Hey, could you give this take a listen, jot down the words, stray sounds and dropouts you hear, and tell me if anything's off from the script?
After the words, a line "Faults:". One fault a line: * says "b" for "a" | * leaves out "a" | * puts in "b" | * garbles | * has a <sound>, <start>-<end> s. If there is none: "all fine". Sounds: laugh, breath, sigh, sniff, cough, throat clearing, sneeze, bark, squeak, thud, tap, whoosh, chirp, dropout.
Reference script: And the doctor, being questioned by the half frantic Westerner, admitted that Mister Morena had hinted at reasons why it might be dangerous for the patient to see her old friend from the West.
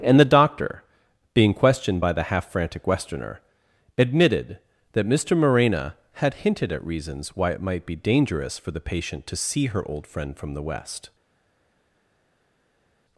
And the doctor, being questioned by the half frantic Westerner, admitted that Mister Morena had hinted at reasons why it might be dangerous for the patient to see her old friend from the West.
Faults:
all fine